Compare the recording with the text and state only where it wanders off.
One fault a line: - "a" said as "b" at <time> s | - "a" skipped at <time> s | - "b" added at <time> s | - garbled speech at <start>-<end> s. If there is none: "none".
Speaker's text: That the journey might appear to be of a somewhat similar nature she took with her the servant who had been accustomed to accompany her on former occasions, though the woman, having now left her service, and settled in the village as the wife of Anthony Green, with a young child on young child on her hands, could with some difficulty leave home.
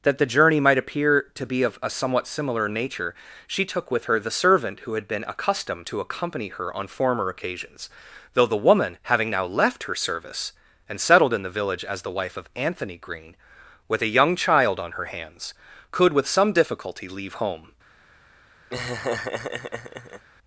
- "young child on" skipped at 14.9 s